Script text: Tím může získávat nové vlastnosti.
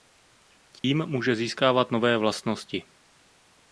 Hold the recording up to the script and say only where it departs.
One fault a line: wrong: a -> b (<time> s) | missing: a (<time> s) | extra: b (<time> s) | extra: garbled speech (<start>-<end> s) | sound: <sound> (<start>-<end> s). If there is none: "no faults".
sound: dropout (0.8-0.8 s)